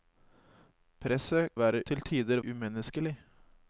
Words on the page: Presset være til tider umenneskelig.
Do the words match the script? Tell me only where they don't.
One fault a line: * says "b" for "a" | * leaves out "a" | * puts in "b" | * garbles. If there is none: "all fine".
all fine